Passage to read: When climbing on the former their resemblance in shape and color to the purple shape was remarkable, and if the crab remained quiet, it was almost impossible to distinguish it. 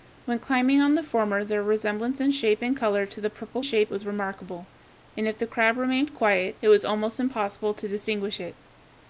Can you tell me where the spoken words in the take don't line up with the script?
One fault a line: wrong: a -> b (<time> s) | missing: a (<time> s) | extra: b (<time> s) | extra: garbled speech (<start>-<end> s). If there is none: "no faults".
no faults